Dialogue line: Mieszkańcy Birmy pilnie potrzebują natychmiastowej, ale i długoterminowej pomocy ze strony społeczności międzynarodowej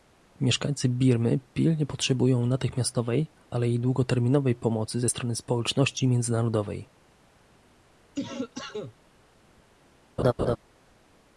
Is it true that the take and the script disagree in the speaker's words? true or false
false